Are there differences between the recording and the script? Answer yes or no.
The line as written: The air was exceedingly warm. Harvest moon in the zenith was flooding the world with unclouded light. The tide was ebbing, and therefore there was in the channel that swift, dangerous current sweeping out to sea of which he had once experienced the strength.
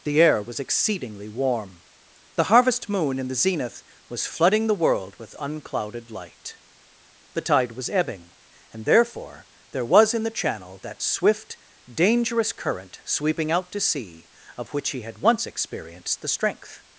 yes